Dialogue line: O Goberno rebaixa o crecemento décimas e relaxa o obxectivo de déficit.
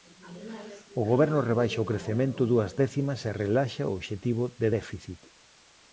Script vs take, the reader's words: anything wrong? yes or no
yes